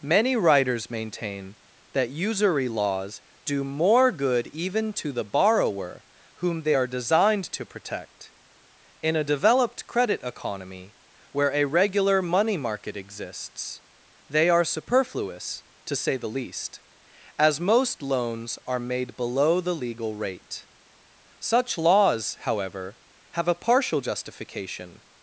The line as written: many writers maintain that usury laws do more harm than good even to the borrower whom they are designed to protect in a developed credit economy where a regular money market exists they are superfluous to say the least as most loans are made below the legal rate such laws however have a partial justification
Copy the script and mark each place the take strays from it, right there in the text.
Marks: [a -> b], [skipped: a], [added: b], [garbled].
many writers maintain that usury laws do more [skipped: harm than] good even to the borrower whom they are designed to protect in a developed credit economy where a regular money market exists they are superfluous to say the least as most loans are made below the legal rate such laws however have a partial justification